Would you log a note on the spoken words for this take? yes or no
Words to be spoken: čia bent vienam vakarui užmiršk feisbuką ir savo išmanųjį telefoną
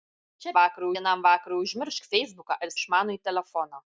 yes